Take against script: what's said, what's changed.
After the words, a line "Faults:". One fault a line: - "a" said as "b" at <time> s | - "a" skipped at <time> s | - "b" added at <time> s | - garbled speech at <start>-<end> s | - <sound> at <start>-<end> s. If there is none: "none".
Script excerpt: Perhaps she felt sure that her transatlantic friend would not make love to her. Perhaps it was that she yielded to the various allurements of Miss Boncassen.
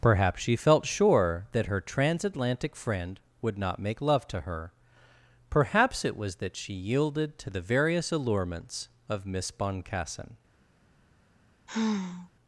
Perhaps she felt sure that her transatlantic friend would not make love to her. Perhaps it was that she yielded to the various allurements of Miss Boncassen.
Faults:
- sigh at 11.7-12.3 s